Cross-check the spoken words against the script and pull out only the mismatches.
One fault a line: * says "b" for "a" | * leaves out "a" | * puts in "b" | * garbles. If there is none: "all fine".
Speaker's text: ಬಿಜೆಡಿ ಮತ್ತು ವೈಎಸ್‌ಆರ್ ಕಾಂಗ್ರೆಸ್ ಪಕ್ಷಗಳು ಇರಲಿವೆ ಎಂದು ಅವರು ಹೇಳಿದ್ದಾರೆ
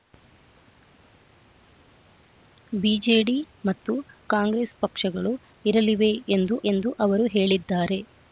* leaves out "ವೈಎಸ್‌ಆರ್"
* puts in "ಎಂದು"